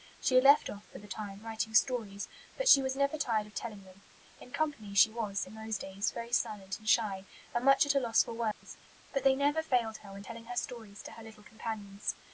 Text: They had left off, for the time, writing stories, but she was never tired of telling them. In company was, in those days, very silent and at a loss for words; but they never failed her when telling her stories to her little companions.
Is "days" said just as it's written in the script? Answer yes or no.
yes